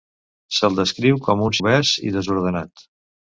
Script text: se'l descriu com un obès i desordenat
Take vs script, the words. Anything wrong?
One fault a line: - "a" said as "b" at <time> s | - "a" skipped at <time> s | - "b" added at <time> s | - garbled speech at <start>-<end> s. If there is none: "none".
none